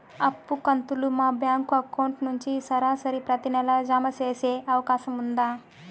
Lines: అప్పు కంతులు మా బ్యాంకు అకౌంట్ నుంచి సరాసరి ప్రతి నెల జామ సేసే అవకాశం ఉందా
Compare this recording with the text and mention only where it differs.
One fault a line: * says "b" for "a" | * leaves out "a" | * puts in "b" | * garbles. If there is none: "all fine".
all fine